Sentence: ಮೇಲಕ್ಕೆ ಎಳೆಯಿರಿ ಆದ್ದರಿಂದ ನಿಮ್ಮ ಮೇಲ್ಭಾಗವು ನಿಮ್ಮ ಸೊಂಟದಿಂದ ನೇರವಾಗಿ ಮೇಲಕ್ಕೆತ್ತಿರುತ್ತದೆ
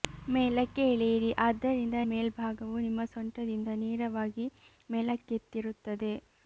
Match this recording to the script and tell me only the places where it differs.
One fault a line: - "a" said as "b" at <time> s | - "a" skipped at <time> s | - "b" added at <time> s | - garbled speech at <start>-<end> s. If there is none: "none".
- "ನಿಮ್ಮ" skipped at 2.0 s